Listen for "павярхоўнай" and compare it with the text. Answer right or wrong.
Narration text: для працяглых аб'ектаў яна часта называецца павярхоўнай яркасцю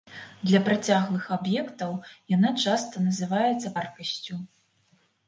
wrong